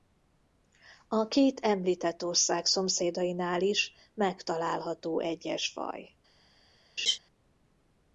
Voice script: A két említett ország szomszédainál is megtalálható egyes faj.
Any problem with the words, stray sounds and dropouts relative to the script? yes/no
yes